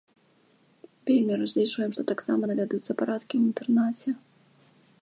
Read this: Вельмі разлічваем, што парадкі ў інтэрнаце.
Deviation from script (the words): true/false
true